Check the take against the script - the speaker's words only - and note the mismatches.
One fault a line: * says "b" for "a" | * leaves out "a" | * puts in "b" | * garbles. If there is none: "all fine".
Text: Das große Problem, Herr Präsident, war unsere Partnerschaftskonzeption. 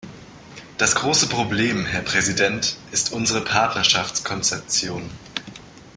* says "ist" for "war"